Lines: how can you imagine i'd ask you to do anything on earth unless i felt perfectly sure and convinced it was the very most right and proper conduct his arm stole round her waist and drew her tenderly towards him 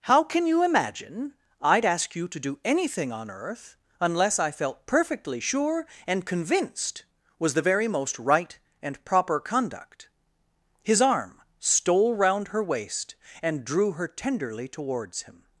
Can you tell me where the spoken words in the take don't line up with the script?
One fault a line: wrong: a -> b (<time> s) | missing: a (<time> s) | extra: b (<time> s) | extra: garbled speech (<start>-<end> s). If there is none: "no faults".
missing: it (7.0 s)